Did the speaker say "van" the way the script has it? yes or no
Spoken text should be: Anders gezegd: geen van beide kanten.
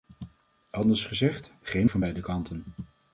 yes